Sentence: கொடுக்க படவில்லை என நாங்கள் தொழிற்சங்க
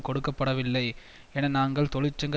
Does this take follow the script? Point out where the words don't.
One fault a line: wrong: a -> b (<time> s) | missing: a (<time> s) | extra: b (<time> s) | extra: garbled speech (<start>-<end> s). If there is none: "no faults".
no faults